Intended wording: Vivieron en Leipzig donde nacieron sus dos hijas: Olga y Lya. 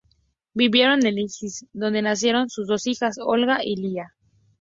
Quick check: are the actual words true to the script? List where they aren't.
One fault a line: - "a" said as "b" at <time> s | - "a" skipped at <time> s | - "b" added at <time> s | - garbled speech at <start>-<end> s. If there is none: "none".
none